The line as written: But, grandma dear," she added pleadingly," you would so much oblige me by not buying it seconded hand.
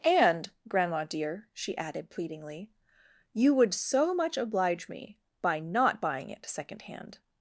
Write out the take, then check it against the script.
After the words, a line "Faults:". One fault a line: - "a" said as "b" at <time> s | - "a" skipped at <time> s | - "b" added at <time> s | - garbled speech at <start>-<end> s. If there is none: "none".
And, grandma dear," she added pleadingly," you would so much oblige me by not buying it second hand.
Faults:
- "But" said as "And" at 0.0 s
- "seconded" said as "second" at 6.5 s